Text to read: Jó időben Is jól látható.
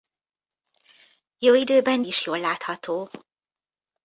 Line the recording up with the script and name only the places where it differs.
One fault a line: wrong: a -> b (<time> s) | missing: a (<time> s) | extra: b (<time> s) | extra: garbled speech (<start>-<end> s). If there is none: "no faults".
no faults